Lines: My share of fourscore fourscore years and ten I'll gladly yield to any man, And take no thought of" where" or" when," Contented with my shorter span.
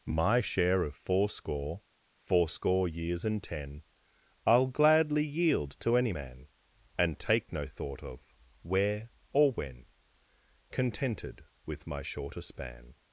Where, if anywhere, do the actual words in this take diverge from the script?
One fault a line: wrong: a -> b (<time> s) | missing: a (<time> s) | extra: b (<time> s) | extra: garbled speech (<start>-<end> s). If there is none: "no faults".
no faults